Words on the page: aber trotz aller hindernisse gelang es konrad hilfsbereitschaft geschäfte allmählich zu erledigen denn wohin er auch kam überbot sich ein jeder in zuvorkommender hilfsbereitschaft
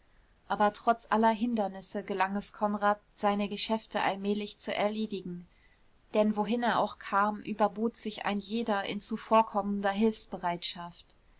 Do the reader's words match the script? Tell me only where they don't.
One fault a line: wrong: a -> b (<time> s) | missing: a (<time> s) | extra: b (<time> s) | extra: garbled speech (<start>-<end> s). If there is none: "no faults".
wrong: hilfsbereitschaft -> seine (3.1 s)